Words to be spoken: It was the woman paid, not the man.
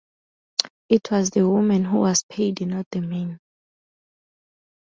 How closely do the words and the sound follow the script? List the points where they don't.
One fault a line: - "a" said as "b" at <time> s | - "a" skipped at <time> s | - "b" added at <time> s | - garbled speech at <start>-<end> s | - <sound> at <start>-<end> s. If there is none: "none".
- "who was" added at 1.9 s